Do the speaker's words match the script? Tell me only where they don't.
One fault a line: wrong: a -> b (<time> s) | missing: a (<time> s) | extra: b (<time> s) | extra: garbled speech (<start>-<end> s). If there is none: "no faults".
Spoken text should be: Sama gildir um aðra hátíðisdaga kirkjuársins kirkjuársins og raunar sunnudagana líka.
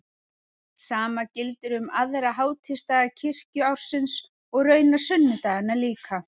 missing: kirkjuársins (4.2 s)